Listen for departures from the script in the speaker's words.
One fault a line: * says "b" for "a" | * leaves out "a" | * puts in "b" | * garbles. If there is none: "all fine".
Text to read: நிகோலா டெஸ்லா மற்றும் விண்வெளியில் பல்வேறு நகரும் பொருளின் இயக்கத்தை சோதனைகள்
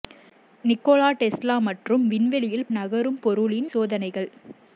* leaves out "பல்வேறு"
* leaves out "இயக்கத்தை"